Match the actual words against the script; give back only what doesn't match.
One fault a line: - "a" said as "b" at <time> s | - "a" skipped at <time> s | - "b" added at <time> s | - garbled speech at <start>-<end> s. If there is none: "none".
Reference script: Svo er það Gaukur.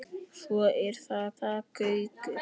- "það" added at 1.4 s